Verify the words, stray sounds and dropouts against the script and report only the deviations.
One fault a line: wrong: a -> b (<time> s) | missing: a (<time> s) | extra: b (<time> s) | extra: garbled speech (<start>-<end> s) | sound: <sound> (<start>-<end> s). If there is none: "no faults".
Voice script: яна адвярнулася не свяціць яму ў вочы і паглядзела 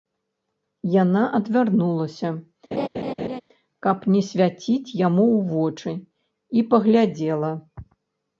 sound: laugh (2.7-3.4 s)
extra: каб (3.9 s)